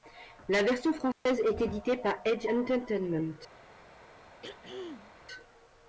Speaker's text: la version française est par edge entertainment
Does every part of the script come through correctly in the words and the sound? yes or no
no